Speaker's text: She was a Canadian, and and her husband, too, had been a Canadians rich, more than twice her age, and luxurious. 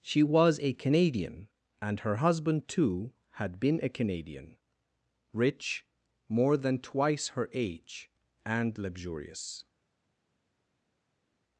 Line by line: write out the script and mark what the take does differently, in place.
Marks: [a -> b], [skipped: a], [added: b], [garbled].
She was a Canadian, and [skipped: and] her husband, too, had been a [Canadians -> Canadian] rich, more than twice her age, and luxurious.